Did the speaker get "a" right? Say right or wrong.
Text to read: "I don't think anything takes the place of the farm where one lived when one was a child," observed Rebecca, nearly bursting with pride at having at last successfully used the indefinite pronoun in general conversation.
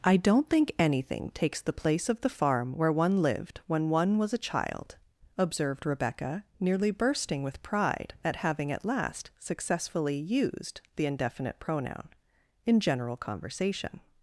right